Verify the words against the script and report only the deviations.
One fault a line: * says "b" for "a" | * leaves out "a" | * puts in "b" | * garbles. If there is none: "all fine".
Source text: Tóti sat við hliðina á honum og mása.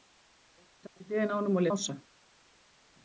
all fine